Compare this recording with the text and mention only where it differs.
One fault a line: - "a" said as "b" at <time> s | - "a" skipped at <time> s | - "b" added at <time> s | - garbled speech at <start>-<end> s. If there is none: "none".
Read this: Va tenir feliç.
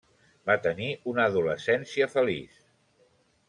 - "una adolescència" added at 1.1 s